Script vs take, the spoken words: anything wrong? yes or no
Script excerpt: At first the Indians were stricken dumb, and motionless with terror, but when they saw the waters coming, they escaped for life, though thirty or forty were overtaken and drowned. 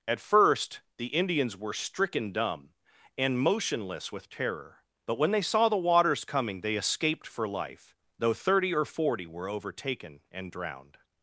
no